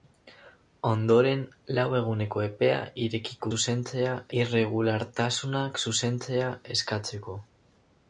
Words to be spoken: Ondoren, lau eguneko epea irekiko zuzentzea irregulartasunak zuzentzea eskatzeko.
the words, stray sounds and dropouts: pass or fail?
pass